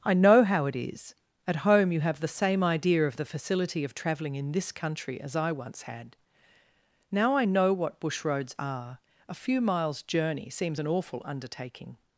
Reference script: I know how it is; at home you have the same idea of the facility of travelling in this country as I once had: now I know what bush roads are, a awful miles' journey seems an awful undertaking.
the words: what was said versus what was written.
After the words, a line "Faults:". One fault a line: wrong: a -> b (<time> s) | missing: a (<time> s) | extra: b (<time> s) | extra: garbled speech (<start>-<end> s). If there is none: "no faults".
I know how it is; at home you have the same idea of the facility of travelling in this country as I once had: now I know what bush roads are, a few miles' journey seems an awful undertaking.
Faults:
wrong: awful -> few (9.3 s)